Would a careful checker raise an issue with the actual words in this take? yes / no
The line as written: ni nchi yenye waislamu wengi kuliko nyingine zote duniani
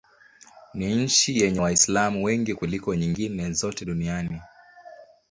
no